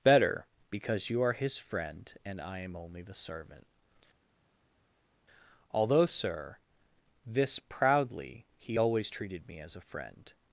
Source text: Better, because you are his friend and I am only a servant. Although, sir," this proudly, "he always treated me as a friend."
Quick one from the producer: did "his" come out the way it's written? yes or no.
yes